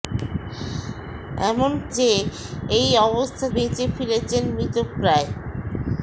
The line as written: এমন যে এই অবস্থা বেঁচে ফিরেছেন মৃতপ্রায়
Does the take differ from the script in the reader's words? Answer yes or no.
no